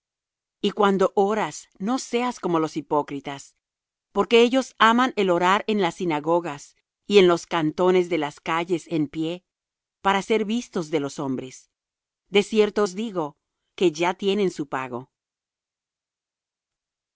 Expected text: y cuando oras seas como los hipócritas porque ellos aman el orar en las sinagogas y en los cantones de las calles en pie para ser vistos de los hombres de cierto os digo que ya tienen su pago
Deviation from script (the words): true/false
true